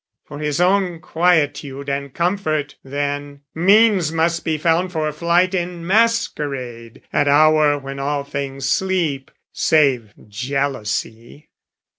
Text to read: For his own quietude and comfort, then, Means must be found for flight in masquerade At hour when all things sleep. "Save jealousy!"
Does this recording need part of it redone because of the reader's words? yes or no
no